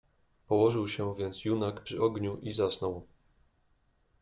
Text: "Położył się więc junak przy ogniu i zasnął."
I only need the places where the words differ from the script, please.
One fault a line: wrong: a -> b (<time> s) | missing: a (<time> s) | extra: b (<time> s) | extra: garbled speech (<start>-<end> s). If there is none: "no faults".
no faults